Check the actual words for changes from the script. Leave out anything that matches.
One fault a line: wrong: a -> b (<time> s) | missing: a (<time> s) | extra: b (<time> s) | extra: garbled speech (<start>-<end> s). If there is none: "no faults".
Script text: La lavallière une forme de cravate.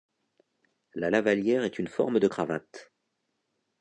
extra: est (1.6 s)